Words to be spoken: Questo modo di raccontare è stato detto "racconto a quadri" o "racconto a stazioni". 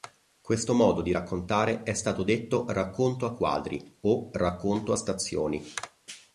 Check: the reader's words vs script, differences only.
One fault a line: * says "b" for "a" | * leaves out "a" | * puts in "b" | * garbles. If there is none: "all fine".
all fine